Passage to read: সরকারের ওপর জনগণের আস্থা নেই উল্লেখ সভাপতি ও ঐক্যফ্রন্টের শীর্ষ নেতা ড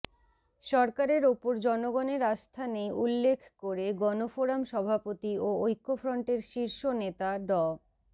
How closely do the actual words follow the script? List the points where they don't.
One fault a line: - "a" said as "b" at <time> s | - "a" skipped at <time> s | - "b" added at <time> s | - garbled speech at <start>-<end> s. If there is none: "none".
- "করে গণফোরাম" added at 3.6 s